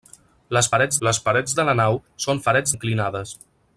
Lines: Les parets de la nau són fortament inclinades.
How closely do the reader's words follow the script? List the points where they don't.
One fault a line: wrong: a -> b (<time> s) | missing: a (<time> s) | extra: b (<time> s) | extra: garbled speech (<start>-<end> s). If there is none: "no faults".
extra: les parets (1.1 s)
wrong: fortament -> parets (2.5 s)